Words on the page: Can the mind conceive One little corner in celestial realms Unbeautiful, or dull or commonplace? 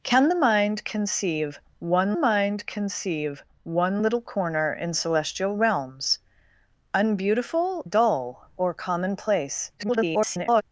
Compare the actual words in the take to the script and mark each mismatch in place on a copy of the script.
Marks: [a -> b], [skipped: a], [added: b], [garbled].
Can the mind conceive One [added: mind conceive One] little corner in celestial realms Unbeautiful, [skipped: or] dull or commonplace? [garbled]